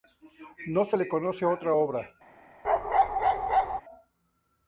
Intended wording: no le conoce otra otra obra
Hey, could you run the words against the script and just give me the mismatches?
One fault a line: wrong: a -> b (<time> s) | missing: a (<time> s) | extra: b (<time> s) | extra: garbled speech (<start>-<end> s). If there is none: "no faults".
extra: se (0.8 s)
missing: otra (1.7 s)